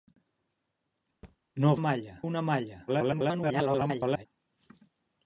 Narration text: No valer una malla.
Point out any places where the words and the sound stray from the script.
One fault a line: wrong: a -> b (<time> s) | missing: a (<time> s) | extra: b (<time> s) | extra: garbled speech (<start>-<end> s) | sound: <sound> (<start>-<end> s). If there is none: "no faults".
sound: thud (1.2-1.4 s)
wrong: valer -> malla (1.8 s)
extra: garbled speech (2.9-4.3 s)